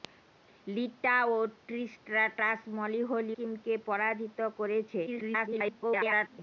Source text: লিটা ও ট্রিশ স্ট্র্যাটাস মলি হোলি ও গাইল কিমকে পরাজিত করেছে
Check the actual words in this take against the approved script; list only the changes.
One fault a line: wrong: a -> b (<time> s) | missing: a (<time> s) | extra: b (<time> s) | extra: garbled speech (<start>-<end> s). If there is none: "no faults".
missing: ও গাইল (3.4 s)
extra: garbled speech (5.1-6.4 s)